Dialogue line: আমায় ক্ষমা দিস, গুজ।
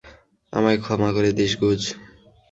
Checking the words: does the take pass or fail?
fail